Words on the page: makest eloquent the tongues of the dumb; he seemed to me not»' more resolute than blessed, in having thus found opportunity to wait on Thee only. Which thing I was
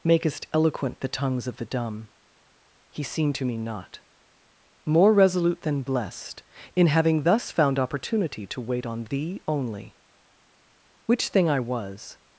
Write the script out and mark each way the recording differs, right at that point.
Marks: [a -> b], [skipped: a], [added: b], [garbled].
makest eloquent the tongues of the dumb; he seemed to me not»' more resolute than blessed, in having thus found opportunity to wait on Thee only. Which thing I was